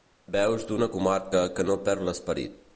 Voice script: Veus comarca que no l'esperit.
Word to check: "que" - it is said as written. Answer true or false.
true